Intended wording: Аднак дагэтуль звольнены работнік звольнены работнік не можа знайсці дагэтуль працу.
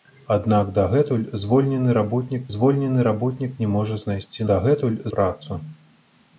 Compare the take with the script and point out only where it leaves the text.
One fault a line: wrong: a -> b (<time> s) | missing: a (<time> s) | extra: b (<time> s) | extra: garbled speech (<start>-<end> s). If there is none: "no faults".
no faults